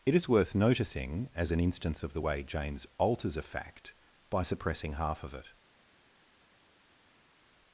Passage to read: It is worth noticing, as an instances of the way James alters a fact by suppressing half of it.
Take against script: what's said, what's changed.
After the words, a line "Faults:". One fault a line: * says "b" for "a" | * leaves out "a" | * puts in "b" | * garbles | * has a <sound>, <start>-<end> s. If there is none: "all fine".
It is worth noticing, as an instance of the way James alters a fact by suppressing half of it.
Faults:
* says "instance" for "instances"